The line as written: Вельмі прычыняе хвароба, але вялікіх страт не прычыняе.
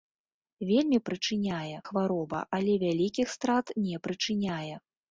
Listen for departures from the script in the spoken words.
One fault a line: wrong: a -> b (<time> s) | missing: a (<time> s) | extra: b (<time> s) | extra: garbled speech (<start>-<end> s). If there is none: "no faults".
no faults